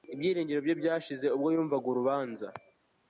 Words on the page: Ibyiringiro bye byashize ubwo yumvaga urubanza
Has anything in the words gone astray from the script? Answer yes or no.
no